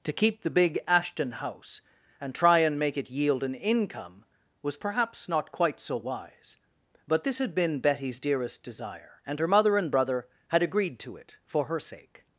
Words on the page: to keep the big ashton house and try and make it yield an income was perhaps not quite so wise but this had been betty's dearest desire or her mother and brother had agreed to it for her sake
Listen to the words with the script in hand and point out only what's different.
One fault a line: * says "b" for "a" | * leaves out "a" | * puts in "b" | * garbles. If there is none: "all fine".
* says "and" for "or"